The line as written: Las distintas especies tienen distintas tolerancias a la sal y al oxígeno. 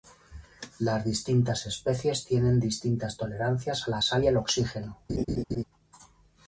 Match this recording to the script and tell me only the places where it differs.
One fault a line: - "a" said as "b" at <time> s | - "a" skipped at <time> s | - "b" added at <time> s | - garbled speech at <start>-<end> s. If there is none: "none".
none